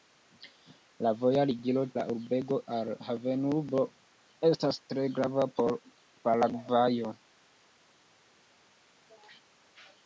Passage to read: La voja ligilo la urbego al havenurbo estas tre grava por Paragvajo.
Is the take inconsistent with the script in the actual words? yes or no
no